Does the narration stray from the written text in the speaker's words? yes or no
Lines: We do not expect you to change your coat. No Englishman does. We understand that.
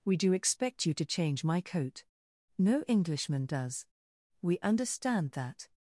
yes